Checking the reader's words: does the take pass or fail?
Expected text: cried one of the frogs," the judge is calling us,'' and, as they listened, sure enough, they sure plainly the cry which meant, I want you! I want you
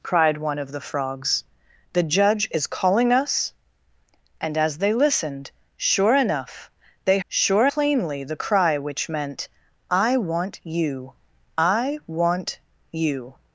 pass